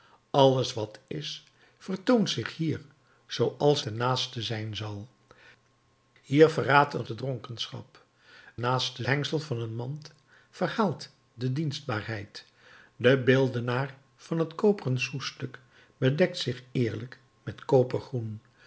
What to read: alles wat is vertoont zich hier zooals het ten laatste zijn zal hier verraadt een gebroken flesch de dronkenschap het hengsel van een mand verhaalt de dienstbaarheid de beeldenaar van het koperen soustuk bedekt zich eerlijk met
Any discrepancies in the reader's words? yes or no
yes